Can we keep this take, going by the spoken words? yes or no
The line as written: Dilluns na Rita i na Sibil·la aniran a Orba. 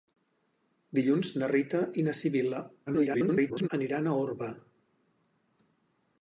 no